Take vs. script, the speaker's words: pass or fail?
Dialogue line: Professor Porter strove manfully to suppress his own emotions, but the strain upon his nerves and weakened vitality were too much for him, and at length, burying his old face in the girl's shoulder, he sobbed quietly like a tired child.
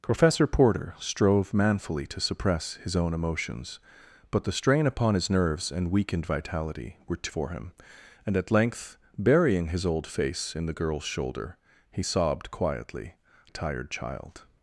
fail